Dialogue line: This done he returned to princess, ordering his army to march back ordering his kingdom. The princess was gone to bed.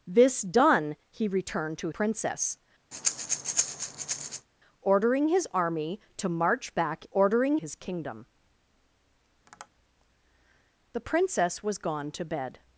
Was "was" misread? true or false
false